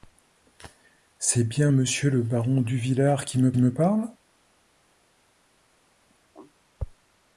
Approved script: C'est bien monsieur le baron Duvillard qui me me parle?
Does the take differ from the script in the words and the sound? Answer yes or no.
no